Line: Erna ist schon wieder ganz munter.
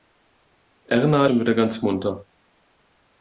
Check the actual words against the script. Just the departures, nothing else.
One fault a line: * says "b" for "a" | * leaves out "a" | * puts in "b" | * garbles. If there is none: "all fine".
* leaves out "ist"